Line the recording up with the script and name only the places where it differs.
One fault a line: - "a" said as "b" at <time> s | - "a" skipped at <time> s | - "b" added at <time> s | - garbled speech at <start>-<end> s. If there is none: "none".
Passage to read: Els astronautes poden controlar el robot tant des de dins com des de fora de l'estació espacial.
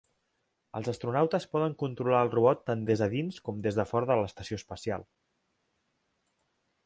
none